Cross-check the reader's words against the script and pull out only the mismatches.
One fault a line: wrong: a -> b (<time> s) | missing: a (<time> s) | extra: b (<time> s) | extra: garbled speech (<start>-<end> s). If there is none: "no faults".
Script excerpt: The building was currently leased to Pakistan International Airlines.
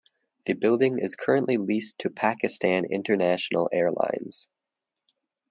wrong: was -> is (0.9 s)